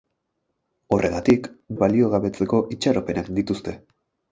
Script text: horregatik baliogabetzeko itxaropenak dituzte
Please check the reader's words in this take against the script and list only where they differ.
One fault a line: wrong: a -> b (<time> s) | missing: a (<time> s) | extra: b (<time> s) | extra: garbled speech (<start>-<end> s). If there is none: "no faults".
no faults